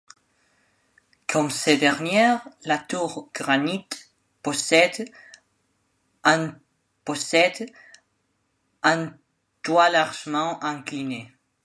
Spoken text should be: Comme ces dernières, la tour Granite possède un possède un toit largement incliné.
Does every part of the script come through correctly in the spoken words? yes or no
yes